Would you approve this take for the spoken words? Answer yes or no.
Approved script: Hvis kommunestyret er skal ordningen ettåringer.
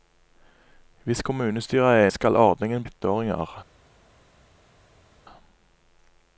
yes